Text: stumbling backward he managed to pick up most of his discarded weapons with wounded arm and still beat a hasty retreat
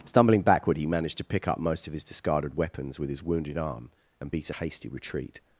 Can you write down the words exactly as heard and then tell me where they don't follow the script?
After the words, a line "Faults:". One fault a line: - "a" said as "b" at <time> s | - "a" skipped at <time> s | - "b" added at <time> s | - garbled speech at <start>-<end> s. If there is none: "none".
stumbling backward he managed to pick up most of his discarded weapons with his wounded arm and beat a hasty retreat
Faults:
- "his" added at 3.1 s
- "still" skipped at 4.3 s